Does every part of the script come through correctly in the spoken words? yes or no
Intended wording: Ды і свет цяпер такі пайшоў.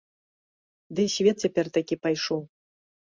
yes